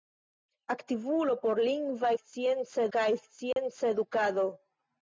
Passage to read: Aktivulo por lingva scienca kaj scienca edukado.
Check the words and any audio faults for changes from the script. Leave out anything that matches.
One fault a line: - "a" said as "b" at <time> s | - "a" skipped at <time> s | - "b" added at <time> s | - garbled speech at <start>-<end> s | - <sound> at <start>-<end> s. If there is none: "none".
- dropout at 3.5-3.6 s